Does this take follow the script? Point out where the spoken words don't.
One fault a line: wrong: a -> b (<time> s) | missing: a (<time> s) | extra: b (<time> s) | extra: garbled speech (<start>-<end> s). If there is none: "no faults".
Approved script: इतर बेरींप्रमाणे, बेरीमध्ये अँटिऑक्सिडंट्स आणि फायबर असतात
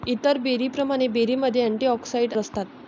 missing: आणि फायबर (2.4 s)